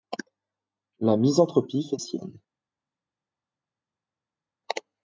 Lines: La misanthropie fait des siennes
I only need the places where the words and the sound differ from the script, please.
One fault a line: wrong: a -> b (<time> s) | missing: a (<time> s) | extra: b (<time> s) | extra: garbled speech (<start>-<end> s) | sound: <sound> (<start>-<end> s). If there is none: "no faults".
missing: des (2.0 s)